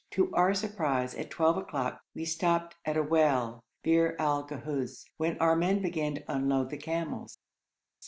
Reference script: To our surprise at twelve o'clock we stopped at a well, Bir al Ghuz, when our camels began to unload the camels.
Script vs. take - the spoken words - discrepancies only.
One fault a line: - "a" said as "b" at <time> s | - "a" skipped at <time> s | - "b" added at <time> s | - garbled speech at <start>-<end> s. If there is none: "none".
- "camels" said as "men" at 5.6 s